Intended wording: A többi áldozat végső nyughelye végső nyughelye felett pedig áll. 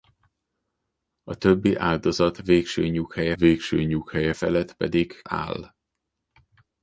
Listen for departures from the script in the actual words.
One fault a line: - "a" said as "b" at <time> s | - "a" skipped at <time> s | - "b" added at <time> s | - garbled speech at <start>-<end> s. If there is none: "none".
none